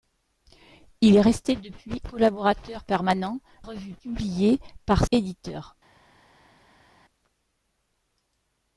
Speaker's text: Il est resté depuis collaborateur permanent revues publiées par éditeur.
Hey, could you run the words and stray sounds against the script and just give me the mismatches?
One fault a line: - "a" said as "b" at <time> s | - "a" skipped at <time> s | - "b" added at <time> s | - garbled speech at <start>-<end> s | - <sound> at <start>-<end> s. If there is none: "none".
none